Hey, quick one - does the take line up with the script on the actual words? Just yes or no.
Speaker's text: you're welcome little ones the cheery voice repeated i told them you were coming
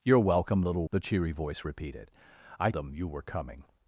no